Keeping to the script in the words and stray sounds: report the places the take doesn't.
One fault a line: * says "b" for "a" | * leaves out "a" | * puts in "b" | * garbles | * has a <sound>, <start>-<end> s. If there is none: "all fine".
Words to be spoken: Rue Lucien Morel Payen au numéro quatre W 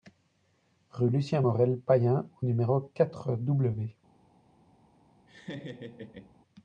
* has a laugh, 5.3-6.4 s